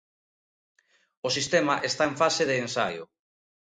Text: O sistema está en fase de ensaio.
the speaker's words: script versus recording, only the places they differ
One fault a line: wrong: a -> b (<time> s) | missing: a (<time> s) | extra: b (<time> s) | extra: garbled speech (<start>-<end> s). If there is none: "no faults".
no faults